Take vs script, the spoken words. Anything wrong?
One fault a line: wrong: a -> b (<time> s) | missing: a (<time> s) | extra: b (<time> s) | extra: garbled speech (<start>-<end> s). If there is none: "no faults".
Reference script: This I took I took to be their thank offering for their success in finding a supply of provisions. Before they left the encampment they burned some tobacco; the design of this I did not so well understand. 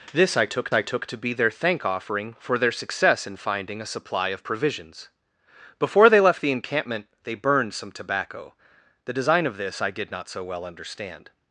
no faults